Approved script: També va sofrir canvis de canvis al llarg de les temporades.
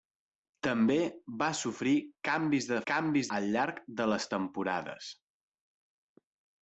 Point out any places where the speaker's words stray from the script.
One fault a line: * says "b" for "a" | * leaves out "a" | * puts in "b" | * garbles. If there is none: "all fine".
all fine